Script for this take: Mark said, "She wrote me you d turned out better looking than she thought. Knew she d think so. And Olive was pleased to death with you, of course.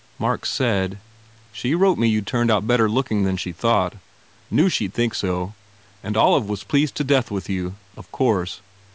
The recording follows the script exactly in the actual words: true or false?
true